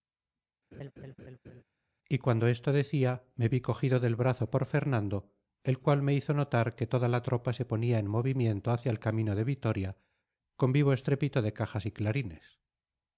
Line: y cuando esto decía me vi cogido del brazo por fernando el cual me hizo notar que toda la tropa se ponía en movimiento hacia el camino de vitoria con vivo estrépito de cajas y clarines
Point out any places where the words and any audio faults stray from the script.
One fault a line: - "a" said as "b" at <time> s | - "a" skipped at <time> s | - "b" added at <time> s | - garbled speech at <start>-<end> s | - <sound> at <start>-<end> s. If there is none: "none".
- laugh at 0.7-1.6 s